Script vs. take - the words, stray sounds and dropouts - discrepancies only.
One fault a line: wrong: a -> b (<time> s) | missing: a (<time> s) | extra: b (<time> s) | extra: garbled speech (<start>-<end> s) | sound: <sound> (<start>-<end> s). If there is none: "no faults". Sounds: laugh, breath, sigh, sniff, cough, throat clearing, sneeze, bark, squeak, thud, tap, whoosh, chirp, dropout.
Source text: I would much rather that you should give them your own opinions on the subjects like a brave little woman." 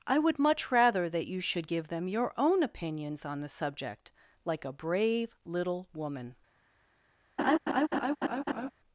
wrong: subjects -> subject (3.5 s)
sound: laugh (7.4-8.7 s)